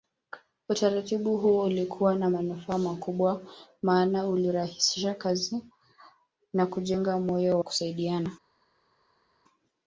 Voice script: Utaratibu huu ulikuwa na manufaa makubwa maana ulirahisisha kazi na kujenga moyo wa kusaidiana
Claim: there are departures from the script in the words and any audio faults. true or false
true